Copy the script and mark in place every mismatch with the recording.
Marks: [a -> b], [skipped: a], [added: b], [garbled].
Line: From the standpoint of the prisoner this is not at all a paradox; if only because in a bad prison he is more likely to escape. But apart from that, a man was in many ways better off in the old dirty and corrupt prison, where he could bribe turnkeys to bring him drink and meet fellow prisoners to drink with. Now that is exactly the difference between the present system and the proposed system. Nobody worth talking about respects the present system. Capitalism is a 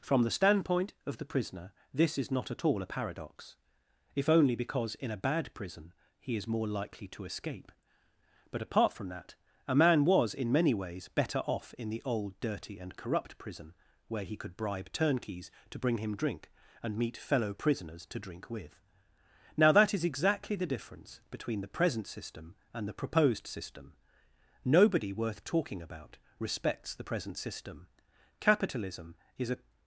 From the standpoint of the prisoner this is not at all a paradox; if only because in a bad prison he is more likely to escape. But apart from that, a man was in many ways better off in the old dirty and corrupt prison, where he could bribe turnkeys to bring him drink and meet fellow prisoners to drink with. Now that is exactly the difference between the present system and the proposed system. Nobody worth talking about respects the present system. Capitalism is a